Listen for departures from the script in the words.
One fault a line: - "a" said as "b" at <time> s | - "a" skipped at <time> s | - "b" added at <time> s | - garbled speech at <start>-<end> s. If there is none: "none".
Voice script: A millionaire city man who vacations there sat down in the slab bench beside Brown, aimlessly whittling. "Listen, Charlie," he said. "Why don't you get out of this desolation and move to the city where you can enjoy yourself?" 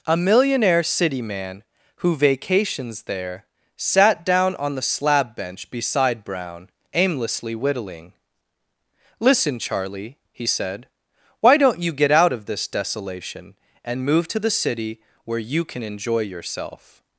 - "in" said as "on" at 4.5 s